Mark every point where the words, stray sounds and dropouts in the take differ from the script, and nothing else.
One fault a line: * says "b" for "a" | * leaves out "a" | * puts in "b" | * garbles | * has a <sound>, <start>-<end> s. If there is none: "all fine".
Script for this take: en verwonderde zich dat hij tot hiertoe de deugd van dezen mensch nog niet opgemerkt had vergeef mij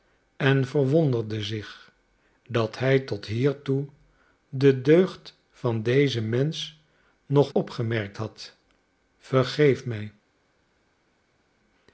* leaves out "niet"